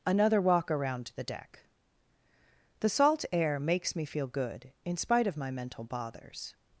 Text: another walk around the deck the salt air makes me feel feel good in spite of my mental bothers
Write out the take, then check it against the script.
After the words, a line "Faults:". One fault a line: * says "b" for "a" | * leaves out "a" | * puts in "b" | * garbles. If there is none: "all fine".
another walk around the deck the salt air makes me feel good in spite of my mental bothers
Faults:
* leaves out "feel"